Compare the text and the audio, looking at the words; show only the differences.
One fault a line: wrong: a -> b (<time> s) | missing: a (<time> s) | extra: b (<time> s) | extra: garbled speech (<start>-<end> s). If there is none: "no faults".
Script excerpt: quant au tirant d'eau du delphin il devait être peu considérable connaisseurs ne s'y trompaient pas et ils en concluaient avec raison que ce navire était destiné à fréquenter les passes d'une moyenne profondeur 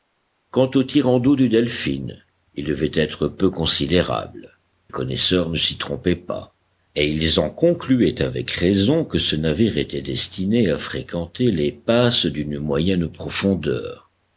no faults